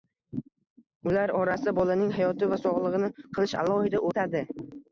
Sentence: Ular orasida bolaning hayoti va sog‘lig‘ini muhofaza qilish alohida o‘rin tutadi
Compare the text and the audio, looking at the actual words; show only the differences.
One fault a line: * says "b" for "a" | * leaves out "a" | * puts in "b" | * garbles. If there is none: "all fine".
* leaves out "muhofaza"
* leaves out "o‘rin"